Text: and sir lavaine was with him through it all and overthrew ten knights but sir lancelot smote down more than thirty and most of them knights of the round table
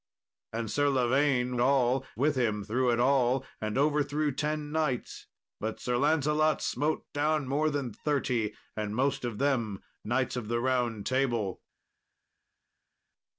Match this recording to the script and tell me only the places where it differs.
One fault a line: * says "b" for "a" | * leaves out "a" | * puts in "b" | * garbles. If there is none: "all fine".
* says "all" for "was"